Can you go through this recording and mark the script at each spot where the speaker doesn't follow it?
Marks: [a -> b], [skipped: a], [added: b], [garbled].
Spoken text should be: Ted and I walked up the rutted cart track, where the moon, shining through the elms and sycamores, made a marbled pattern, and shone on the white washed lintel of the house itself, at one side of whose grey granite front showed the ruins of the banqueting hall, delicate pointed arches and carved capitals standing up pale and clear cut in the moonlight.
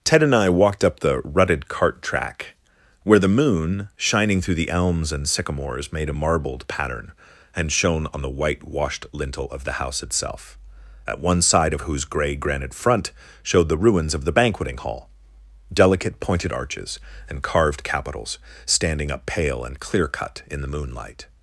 Ted and I walked up the rutted cart track, where the moon, shining through the elms and sycamores, made a marbled pattern, and shone on the white washed lintel of the house itself, at one side of whose grey granite front showed the ruins of the banqueting hall, delicate pointed arches and carved capitals standing up pale and clear cut in the moonlight.